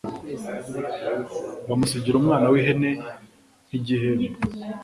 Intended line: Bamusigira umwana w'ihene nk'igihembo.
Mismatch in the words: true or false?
false